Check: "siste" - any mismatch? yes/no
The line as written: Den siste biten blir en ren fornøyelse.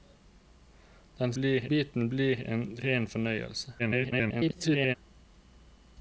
yes